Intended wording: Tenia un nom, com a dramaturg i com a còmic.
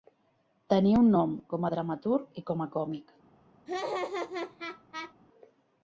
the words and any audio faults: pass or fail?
fail